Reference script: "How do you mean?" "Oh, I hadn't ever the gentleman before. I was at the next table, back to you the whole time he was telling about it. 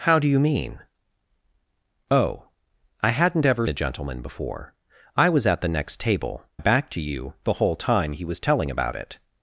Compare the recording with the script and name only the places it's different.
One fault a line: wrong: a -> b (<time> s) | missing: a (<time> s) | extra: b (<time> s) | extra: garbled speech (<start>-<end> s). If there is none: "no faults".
no faults